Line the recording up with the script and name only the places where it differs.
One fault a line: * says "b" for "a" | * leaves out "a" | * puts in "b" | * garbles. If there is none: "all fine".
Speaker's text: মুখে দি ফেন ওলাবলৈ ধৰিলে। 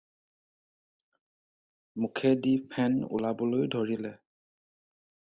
all fine